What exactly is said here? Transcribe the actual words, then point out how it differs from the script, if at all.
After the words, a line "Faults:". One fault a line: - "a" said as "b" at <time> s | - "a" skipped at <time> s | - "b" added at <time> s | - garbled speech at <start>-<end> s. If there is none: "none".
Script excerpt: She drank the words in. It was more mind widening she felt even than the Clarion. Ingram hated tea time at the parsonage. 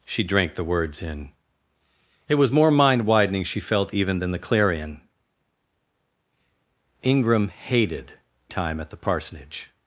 She drank the words in. It was more mind widening she felt even than the Clarion. Ingram hated time at the parsonage.
Faults:
- "tea" skipped at 8.1 s